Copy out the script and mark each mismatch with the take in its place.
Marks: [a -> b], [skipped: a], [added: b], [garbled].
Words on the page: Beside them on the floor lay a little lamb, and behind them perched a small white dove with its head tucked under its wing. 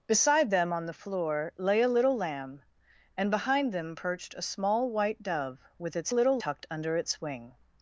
Beside them on the floor lay a little lamb, and behind them perched a small white dove with its [head -> little] tucked under its wing.